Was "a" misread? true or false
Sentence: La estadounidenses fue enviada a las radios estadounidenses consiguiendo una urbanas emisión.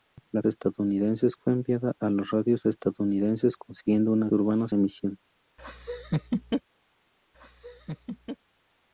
false